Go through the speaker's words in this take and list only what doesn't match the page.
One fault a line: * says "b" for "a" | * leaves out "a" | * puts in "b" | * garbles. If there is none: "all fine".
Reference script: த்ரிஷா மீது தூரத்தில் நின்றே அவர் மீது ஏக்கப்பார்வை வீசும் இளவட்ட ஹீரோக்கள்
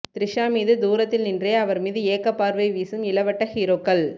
all fine